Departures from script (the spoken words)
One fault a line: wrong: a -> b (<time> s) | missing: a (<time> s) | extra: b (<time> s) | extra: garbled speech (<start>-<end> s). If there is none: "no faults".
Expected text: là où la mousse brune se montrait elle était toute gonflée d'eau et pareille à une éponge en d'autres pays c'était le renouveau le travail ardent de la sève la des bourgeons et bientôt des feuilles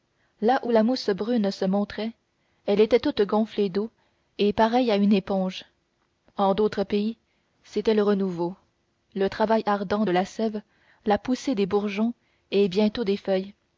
extra: poussée (11.2 s)